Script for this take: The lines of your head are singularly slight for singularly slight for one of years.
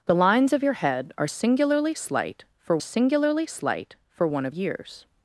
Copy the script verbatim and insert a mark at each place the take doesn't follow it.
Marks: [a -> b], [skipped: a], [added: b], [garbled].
The lines of your head are singularly slight for singularly slight for one of years.